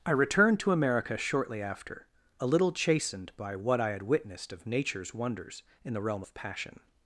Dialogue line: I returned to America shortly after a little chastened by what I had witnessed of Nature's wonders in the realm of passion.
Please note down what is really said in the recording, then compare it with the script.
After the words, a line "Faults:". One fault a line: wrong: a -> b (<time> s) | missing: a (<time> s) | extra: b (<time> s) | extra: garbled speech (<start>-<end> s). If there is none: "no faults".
I returned to America shortly after a little chastened by what I had witnessed of Nature's wonders in the realm of passion.
Faults:
no faults